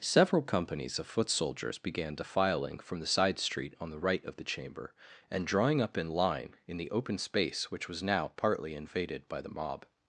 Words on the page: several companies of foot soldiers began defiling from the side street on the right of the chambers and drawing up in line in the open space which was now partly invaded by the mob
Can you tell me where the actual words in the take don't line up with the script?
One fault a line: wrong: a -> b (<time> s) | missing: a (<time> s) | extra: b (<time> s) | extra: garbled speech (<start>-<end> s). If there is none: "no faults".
wrong: chambers -> chamber (4.5 s)